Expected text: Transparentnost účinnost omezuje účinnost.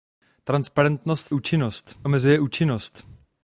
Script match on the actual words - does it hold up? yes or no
yes